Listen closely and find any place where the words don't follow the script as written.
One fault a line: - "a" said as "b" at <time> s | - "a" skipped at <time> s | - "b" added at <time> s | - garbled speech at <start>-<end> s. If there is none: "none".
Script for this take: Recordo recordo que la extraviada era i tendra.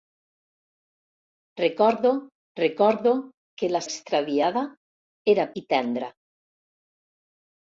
none